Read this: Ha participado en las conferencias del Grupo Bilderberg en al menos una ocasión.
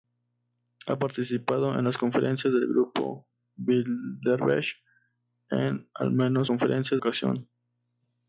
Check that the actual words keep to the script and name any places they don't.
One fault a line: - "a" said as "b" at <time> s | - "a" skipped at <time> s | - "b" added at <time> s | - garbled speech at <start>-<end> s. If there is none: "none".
- "una" said as "conferencias" at 6.5 s